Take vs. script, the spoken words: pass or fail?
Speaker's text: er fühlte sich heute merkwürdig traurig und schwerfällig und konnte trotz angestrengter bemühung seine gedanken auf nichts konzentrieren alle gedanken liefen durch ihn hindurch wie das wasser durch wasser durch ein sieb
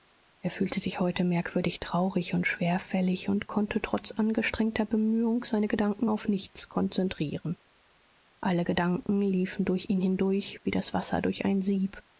fail